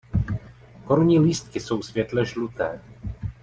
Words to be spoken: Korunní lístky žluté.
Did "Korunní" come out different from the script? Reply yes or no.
no